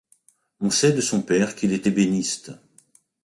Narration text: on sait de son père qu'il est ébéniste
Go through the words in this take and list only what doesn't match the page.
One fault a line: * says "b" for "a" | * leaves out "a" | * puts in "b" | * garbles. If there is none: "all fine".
all fine